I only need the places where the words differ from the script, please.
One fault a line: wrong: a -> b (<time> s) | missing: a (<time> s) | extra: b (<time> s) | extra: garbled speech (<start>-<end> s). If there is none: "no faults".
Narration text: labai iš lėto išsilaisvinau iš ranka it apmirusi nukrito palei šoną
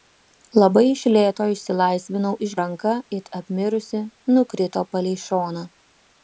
no faults